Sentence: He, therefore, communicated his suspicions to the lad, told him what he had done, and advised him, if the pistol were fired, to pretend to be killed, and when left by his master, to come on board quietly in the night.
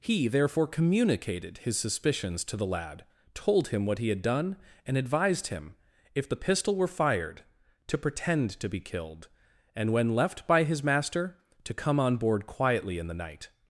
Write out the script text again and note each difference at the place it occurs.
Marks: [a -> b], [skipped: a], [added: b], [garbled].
He, therefore, communicated his suspicions to the lad, told him what he had done, and advised him, if the pistol were fired, to pretend to be killed, and when left by his master, to come on board quietly in the night.